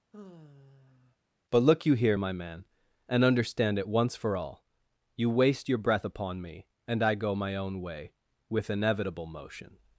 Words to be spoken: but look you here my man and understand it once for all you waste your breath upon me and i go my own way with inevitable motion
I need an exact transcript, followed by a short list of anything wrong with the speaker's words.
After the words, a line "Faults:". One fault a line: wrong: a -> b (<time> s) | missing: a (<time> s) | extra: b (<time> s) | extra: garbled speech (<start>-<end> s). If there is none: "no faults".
but look you here my man and understand it once for all you waste your breath upon me and i go my own way with inevitable motion
Faults:
no faults